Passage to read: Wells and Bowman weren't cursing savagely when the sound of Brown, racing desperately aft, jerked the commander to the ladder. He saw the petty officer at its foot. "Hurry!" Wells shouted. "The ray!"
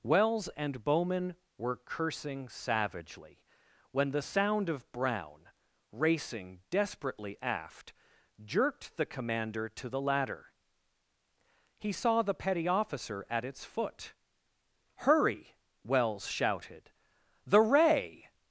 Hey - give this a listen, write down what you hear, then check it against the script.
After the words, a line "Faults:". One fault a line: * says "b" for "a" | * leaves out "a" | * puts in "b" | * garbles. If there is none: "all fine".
Wells and Bowman were cursing savagely when the sound of Brown, racing desperately aft, jerked the commander to the ladder. He saw the petty officer at its foot. "Hurry!" Wells shouted. "The ray!"
Faults:
* says "were" for "weren't"